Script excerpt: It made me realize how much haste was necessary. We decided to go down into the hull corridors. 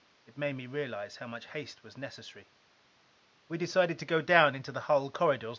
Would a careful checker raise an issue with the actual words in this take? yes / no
no